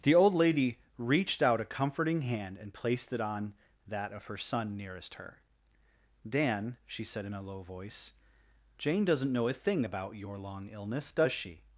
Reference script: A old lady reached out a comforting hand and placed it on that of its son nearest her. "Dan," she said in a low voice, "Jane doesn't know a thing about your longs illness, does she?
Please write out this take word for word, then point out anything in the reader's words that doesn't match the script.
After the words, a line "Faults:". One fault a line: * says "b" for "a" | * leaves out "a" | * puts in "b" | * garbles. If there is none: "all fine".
The old lady reached out a comforting hand and placed it on that of her son nearest her. "Dan," she said in a low voice, "Jane doesn't know a thing about your long illness, does she?
Faults:
* says "The" for "A"
* says "her" for "its"
* says "long" for "longs"